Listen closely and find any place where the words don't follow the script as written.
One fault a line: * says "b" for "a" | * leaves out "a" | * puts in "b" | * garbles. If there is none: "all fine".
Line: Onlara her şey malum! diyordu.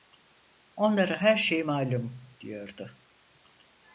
all fine